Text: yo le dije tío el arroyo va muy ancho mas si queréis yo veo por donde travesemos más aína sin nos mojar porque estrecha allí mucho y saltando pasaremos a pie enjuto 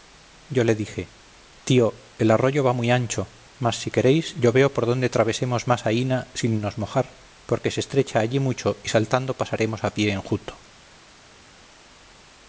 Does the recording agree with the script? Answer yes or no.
no